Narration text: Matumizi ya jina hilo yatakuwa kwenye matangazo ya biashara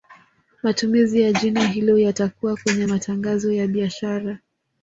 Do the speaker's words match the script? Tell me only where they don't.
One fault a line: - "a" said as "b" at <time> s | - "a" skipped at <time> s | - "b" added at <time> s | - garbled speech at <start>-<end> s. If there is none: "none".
none